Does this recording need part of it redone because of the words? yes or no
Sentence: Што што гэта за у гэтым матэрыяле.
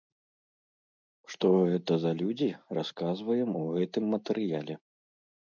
yes